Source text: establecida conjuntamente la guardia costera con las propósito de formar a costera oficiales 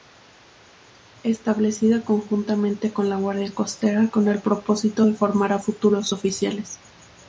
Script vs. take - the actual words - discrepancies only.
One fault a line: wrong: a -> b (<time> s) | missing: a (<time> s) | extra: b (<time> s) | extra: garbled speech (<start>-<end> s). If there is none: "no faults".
extra: con (2.9 s)
wrong: las -> el (4.3 s)
wrong: costera -> futuros (5.6 s)